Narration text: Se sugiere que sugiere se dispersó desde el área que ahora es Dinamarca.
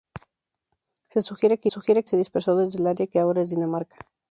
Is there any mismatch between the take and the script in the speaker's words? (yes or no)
no